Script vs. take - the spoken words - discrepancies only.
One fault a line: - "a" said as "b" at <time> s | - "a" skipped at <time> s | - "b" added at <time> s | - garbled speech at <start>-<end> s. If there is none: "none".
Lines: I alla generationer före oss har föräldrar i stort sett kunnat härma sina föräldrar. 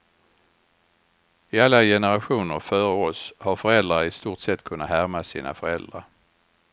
none